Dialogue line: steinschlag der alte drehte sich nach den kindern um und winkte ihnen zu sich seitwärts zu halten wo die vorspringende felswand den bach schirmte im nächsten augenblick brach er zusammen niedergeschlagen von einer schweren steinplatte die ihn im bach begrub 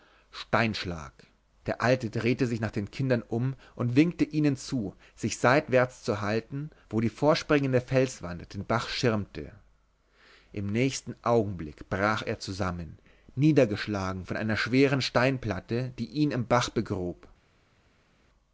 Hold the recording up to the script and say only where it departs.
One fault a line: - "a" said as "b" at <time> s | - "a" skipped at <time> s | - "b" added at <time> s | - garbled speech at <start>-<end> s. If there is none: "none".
none